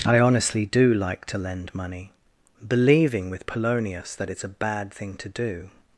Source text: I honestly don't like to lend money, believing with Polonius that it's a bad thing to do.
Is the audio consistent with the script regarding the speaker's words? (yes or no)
no